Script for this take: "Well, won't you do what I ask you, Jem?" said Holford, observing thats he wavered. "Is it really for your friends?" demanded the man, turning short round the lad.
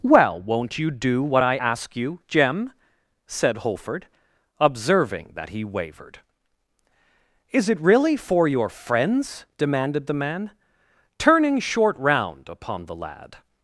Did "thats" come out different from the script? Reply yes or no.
yes